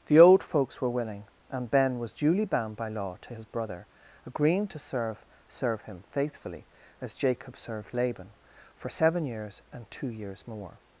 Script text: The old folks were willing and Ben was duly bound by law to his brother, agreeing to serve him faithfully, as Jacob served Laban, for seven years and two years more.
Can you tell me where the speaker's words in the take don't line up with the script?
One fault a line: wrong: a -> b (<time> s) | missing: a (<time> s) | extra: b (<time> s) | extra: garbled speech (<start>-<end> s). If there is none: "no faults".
extra: serve (5.5 s)